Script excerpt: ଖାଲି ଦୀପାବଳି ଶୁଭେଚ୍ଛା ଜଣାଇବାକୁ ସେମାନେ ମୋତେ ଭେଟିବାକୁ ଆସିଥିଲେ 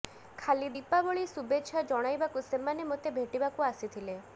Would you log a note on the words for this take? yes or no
no